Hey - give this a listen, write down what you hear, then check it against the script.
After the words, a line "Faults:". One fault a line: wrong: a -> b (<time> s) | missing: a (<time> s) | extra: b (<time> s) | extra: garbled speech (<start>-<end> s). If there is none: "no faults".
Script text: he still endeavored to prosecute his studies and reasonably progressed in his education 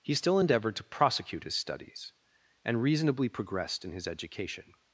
he still endeavored to prosecute his studies and reasonably progressed in his education
Faults:
no faults